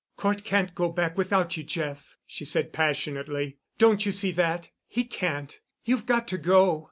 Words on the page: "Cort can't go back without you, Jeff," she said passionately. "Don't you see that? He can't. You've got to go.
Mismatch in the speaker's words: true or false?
false